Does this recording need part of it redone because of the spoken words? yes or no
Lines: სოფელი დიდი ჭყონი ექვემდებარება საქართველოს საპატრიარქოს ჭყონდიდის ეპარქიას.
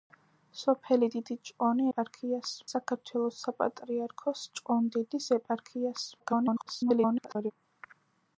yes